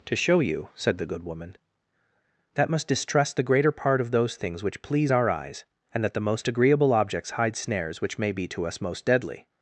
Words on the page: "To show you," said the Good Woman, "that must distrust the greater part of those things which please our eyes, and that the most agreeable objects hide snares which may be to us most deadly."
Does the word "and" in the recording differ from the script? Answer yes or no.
no